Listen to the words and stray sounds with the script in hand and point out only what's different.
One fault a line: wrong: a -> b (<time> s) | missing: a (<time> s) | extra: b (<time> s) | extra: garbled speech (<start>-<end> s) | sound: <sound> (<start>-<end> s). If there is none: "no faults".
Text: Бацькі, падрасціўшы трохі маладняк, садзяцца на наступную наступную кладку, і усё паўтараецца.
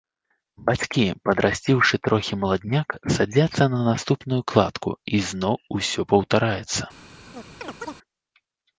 missing: наступную (4.4 s)
extra: зноў (5.3 s)
sound: chirp (7.3-8.0 s)